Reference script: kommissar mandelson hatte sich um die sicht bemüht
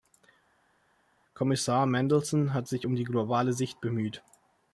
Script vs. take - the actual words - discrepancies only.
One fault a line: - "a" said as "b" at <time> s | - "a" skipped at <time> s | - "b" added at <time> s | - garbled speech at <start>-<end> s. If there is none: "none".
- "hatte" said as "hat" at 2.5 s
- "globale" added at 3.0 s